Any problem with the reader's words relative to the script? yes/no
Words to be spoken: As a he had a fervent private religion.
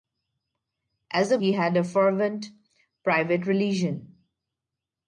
no